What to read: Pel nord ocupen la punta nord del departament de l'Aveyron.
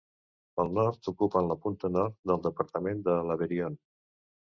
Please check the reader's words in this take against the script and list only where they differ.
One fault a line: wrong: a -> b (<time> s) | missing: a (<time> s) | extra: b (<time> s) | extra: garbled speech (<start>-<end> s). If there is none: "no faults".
no faults